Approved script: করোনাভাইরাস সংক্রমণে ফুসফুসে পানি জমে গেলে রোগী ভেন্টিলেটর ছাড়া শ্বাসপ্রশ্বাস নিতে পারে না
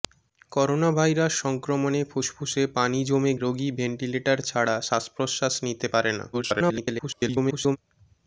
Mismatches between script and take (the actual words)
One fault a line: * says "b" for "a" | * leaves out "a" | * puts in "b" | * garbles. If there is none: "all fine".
* leaves out "গেলে"
* garbles